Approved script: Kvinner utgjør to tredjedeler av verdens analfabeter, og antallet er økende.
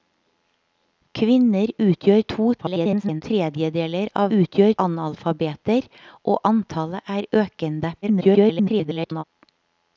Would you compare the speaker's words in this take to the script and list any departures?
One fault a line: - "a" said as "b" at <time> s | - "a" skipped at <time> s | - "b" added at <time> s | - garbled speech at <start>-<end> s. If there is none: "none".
- garbled speech at 2.6-3.2 s
- "verdens" said as "utgjør" at 4.4 s
- garbled speech at 8.0-9.2 s